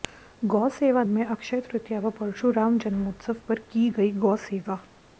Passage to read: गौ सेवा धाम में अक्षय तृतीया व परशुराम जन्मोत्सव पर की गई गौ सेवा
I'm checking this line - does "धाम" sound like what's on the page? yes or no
no